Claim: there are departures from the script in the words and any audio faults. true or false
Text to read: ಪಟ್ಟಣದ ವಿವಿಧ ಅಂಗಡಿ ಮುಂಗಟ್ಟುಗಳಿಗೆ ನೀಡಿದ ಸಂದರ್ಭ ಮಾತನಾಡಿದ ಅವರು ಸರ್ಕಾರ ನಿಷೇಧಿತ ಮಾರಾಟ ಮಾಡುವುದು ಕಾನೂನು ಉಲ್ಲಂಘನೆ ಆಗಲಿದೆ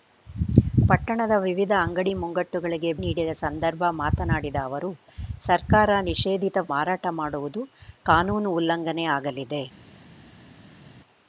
false